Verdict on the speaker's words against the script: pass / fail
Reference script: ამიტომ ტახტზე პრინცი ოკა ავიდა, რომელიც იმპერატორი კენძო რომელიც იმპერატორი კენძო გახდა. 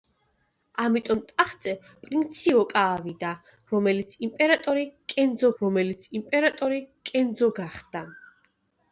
pass